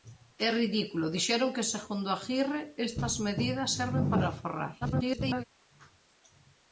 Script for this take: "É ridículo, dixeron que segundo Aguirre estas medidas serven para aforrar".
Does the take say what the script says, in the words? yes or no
no